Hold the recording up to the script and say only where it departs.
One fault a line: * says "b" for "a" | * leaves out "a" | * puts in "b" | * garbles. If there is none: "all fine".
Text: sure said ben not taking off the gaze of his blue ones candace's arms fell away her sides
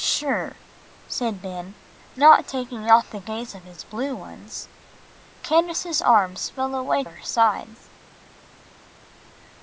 all fine